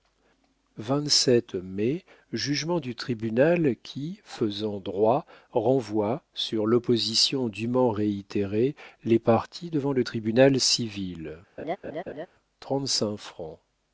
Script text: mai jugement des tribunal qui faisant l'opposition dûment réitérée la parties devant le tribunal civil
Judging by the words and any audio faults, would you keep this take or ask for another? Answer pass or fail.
fail